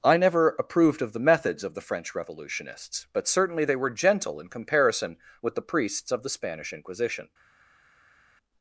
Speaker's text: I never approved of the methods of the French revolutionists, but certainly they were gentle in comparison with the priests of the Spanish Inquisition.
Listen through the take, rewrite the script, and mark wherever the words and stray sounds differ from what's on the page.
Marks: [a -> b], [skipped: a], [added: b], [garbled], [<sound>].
I never approved of the methods of the French revolutionists, but certainly they were gentle in comparison with the priests of the Spanish Inquisition.